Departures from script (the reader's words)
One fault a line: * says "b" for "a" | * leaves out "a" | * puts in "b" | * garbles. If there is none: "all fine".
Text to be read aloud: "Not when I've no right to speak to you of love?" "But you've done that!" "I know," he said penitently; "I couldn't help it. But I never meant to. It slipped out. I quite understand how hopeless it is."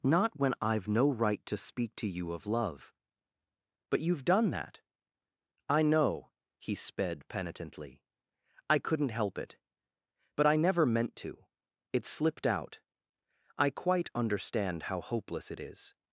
* says "sped" for "said"